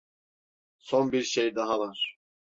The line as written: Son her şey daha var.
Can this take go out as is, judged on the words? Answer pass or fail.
fail